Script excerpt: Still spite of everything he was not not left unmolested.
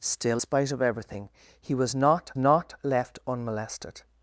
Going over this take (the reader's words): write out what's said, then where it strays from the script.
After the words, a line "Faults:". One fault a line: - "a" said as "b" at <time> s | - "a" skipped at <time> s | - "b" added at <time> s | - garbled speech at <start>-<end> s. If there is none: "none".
Still spite of everything he was not not left unmolested.
Faults:
none